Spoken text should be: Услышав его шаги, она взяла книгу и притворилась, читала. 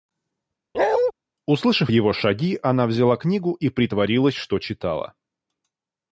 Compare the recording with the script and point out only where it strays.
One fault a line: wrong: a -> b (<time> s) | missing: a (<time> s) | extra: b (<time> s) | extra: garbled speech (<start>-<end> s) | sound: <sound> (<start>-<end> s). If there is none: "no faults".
sound: bark (0.7-1.1 s)
extra: что (4.4 s)